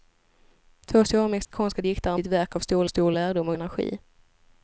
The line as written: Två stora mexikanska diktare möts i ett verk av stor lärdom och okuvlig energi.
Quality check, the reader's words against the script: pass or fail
fail